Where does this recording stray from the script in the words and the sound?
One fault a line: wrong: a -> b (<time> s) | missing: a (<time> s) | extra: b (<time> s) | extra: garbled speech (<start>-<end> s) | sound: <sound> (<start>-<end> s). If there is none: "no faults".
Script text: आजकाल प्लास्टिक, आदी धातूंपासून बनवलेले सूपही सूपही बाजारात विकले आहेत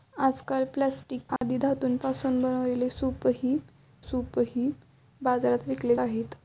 sound: dropout (1.4-1.4 s)